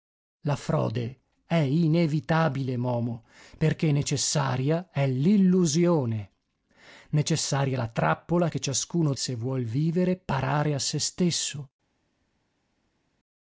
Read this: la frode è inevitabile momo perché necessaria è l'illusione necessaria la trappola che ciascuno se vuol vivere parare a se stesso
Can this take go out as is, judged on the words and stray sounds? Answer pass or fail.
pass